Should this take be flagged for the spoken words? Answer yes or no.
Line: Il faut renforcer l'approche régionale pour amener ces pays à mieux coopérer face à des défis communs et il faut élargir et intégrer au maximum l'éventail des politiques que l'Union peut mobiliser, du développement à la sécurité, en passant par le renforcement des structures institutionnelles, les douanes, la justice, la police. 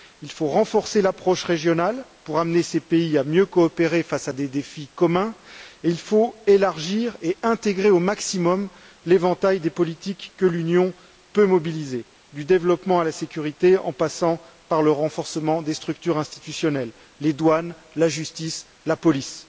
no